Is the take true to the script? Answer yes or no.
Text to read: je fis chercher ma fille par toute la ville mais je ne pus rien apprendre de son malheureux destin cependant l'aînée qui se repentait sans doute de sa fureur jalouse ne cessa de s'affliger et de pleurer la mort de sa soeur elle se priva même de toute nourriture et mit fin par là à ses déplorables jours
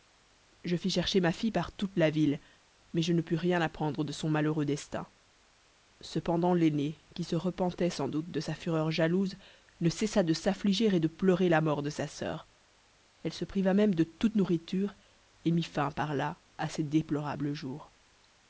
yes